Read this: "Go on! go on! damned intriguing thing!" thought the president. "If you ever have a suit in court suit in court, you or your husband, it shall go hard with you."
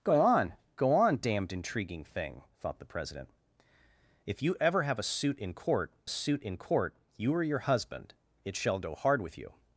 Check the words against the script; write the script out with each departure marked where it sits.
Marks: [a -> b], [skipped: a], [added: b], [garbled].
"Go on! go on! damned intriguing thing!" thought the president. "If you ever have a suit in court suit in court, you or your husband, it shall go hard with you."